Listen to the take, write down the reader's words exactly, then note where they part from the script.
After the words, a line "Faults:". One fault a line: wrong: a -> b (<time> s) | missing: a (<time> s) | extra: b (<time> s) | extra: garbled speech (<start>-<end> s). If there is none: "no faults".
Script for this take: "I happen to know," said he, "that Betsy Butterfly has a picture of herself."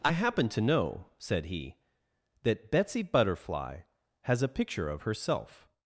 "I happen to know," said he, "that Betsy Butterfly has a picture of herself."
Faults:
no faults